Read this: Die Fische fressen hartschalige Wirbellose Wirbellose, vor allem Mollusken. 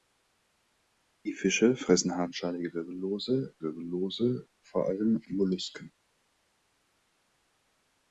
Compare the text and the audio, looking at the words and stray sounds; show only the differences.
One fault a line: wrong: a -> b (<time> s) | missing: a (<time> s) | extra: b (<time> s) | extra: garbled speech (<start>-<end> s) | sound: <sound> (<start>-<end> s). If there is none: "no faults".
no faults